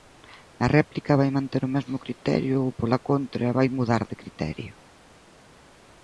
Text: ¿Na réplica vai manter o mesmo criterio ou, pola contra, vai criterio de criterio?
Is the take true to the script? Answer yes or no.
no